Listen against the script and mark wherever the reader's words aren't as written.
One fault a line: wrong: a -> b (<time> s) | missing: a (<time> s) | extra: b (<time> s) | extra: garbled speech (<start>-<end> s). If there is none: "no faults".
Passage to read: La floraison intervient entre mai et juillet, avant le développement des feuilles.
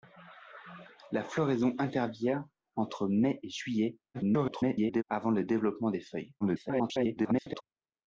extra: garbled speech (4.1-5.0 s)
extra: garbled speech (6.4-7.6 s)